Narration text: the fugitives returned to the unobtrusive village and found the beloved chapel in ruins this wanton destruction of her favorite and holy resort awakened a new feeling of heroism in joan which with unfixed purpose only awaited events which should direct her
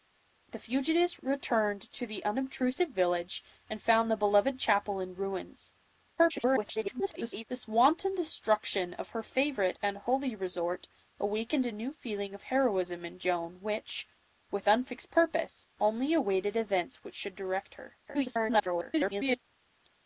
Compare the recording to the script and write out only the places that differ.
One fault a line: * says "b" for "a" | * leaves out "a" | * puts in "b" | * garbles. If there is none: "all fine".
* garbles
* garbles